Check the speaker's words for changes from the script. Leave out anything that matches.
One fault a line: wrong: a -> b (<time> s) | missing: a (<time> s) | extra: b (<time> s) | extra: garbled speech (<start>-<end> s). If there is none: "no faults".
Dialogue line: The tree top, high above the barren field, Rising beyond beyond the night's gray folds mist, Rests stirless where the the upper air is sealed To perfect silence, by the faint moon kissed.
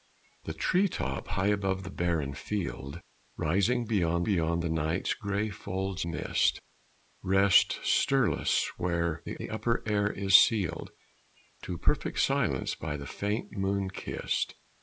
no faults